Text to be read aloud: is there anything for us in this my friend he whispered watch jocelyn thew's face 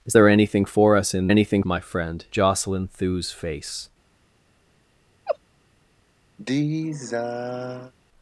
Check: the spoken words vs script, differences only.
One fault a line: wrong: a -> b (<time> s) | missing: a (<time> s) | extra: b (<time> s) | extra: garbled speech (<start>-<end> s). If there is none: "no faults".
wrong: this -> anything (1.3 s)
missing: he whispered watch (2.3 s)